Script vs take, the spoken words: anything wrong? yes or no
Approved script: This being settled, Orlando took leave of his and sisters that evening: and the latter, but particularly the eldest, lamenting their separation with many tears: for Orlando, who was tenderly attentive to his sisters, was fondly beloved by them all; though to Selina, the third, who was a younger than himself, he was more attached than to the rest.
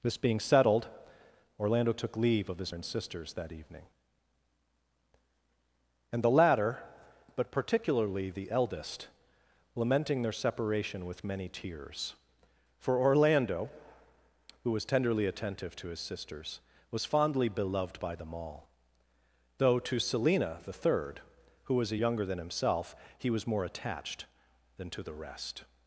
no